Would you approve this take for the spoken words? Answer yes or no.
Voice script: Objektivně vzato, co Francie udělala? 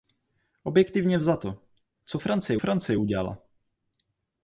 no